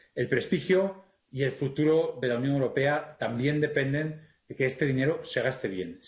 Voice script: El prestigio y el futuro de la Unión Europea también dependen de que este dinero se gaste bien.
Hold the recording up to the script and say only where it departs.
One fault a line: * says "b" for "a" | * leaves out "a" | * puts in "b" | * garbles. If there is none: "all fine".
all fine